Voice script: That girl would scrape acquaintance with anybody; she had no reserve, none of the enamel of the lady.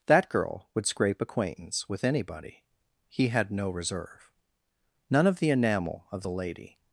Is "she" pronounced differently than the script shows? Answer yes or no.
yes